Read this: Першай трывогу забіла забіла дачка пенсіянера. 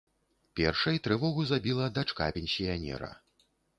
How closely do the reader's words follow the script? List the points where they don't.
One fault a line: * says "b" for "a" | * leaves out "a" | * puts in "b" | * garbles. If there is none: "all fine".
* leaves out "забіла"